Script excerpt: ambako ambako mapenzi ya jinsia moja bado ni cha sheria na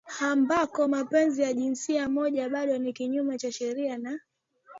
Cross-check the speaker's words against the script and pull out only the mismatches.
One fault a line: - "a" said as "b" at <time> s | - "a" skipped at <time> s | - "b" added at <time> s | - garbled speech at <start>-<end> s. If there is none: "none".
- "ambako" skipped at 0.9 s
- "kinyume" added at 2.9 s